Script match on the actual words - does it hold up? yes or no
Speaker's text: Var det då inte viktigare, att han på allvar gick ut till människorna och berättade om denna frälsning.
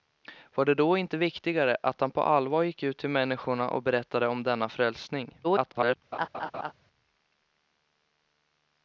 no